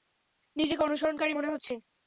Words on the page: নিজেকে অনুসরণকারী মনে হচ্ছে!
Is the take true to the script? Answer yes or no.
yes